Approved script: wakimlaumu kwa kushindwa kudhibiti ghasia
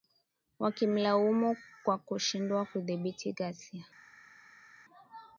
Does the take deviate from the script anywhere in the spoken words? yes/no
no